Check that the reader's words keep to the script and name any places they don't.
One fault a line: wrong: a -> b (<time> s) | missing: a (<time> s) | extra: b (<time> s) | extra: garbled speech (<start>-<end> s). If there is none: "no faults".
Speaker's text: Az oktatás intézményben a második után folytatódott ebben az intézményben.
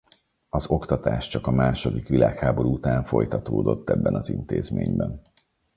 wrong: intézményben -> csak (1.3 s)
extra: világháború (2.1 s)